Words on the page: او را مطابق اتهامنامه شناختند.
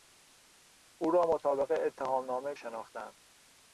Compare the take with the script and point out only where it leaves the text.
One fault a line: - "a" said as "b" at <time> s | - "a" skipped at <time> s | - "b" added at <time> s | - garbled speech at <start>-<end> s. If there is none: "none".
none